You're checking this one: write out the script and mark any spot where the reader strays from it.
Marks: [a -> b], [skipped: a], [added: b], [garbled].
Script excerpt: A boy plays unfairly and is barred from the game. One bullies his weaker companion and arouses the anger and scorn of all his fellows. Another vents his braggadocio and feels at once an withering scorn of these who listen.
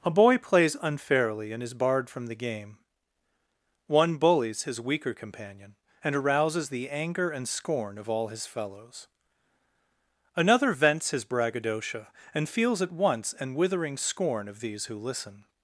A boy plays unfairly and is barred from the game. One bullies his weaker companion and arouses the anger and scorn of all his fellows. Another vents his braggadocio and feels at once an withering scorn of these who listen.